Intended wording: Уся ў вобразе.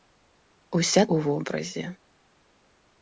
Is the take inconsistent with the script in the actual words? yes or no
no